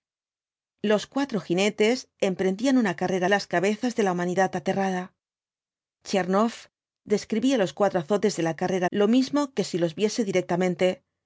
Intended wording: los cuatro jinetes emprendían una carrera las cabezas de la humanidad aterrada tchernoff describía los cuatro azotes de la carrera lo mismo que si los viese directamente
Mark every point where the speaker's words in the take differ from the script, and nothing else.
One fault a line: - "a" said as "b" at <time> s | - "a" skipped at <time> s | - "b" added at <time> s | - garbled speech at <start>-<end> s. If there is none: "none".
none